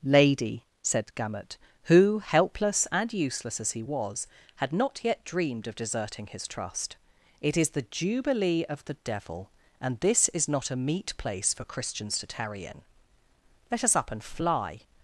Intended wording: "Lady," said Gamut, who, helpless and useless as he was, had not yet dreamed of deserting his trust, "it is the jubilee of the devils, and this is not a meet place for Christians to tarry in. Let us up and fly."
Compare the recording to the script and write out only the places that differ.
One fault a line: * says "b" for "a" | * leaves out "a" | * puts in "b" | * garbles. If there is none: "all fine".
* says "devil" for "devils"